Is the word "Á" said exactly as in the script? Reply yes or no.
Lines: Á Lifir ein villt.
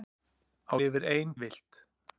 yes